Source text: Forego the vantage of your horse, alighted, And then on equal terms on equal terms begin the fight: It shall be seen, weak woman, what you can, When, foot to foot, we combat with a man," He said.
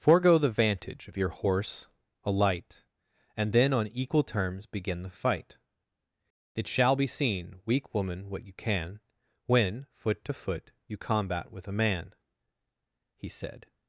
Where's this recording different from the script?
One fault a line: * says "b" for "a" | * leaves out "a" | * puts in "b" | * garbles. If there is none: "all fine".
* says "alight" for "alighted"
* leaves out "on equal terms"
* says "you" for "we"